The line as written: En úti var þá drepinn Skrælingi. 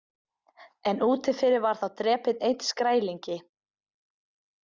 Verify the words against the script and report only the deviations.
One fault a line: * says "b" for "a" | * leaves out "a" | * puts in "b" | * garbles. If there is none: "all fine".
* puts in "fyrir"
* puts in "einn"